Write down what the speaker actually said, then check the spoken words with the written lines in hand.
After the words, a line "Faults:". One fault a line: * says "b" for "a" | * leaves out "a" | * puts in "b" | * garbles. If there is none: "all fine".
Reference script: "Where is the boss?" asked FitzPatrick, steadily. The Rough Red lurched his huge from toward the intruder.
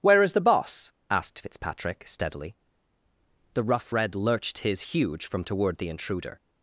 "Where is the boss?" asked FitzPatrick, steadily. The Rough Red lurched his huge from toward the intruder.
Faults:
all fine